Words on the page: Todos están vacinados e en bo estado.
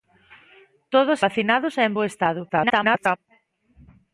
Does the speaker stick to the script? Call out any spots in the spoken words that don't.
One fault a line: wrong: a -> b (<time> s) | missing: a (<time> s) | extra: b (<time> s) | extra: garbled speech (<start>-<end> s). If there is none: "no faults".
missing: están (1.2 s)
extra: garbled speech (2.5-3.2 s)